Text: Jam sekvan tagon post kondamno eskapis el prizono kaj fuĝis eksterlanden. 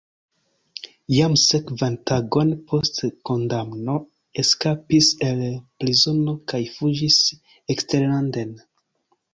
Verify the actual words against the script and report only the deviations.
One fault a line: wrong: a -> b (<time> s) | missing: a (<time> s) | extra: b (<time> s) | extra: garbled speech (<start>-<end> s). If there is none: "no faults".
no faults